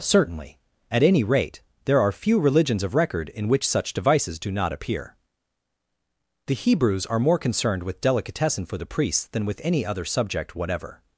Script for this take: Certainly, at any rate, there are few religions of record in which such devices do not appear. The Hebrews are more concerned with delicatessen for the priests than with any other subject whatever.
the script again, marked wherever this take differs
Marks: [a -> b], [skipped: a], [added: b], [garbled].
Certainly, at any rate, there are few religions of record in which such devices do not appear. The Hebrews are more concerned with delicatessen for the priests than with any other subject whatever.